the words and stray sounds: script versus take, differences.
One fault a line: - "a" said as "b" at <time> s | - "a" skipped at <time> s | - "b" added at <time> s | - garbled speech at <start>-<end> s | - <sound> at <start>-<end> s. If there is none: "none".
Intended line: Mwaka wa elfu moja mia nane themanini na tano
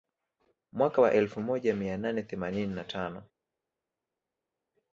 none